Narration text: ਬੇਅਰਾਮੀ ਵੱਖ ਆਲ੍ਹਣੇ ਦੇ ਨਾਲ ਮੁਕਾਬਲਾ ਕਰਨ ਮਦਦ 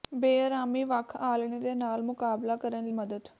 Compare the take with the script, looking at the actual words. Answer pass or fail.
pass